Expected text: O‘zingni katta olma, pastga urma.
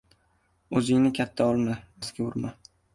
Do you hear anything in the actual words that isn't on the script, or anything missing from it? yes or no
no